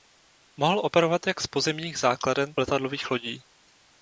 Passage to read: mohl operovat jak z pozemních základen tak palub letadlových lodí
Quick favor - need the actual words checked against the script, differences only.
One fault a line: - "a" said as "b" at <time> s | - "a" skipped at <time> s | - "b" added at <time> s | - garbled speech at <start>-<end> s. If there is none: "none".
- "tak palub" skipped at 2.5 s